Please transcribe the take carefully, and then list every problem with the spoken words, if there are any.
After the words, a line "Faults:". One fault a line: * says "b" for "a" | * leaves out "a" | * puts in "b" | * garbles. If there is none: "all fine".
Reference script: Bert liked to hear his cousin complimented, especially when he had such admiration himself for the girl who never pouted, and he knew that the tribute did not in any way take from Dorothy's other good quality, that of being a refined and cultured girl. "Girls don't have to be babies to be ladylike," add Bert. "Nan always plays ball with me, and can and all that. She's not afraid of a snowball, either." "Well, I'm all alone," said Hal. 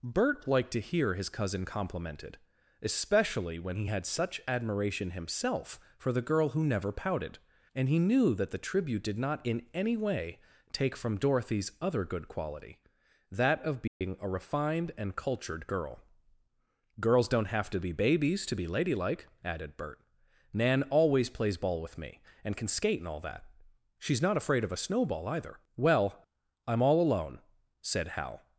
Bert liked to hear his cousin complimented, especially when he had such admiration himself for the girl who never pouted, and he knew that the tribute did not in any way take from Dorothy's other good quality, that of being a refined and cultured girl. "Girls don't have to be babies to be ladylike," added Bert. "Nan always plays ball with me, and can skate and all that. She's not afraid of a snowball, either." "Well, I'm all alone," said Hal.
Faults:
* says "added" for "add"
* puts in "skate"